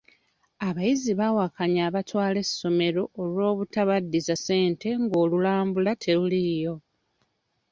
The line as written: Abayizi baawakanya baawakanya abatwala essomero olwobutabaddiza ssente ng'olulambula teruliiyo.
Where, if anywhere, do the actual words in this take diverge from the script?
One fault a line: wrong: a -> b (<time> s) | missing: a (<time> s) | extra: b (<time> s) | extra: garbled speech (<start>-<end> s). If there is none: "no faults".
missing: baawakanya (1.8 s)